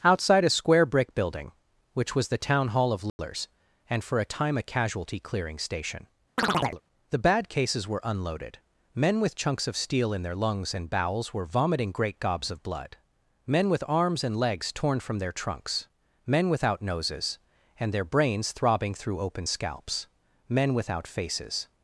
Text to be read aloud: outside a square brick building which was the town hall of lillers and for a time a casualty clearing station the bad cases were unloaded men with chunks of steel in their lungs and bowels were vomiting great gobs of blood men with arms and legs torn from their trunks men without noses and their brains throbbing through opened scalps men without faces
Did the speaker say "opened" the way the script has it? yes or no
no